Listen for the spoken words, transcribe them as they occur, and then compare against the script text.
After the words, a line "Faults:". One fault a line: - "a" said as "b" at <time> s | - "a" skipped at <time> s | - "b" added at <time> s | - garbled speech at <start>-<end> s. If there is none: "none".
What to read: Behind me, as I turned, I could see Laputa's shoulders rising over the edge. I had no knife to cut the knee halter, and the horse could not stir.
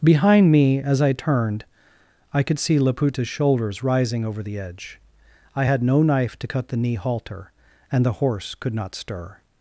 Behind me, as I turned, I could see Laputa's shoulders rising over the edge. I had no knife to cut the knee halter, and the horse could not stir.
Faults:
none